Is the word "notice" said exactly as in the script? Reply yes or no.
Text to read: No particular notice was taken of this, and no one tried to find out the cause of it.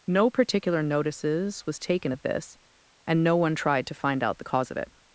no